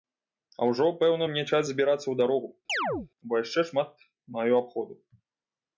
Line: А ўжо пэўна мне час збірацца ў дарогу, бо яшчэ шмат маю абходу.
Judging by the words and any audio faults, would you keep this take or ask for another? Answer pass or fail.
fail